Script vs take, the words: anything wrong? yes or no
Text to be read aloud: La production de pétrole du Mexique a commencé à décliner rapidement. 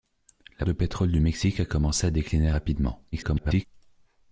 yes